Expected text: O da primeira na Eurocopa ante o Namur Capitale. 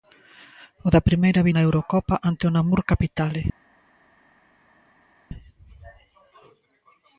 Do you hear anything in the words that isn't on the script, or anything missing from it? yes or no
no